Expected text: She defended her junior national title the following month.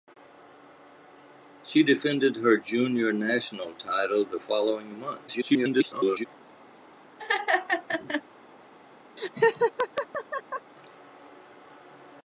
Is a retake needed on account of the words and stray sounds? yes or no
yes